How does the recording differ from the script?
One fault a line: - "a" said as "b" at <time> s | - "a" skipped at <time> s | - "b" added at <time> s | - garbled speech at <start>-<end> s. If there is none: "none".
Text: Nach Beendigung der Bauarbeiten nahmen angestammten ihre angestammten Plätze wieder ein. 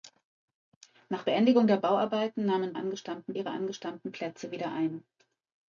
none